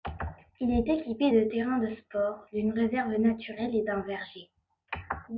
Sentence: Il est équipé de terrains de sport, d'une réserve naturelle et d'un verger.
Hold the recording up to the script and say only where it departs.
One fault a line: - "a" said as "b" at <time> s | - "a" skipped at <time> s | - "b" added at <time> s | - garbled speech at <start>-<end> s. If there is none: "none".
none